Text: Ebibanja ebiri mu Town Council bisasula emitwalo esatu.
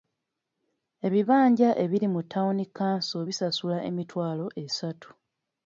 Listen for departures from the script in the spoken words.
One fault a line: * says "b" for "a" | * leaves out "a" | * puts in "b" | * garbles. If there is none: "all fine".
all fine